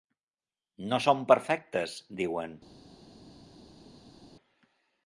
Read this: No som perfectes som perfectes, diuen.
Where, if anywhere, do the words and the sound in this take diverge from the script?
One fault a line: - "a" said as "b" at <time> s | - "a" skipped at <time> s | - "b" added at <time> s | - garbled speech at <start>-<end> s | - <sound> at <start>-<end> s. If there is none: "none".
- "som perfectes" skipped at 2.0 s